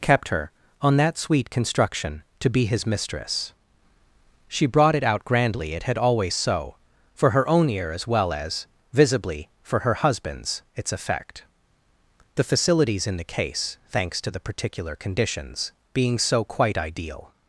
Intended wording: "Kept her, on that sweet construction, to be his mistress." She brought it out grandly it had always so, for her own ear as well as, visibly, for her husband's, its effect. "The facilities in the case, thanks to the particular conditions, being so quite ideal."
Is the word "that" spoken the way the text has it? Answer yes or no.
yes